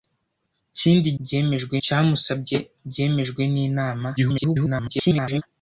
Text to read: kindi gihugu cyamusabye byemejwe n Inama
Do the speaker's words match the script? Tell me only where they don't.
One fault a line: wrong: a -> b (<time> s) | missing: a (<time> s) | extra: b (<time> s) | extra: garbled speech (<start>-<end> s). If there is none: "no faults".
wrong: gihugu -> byemejwe (1.2 s)
extra: garbled speech (4.2-5.4 s)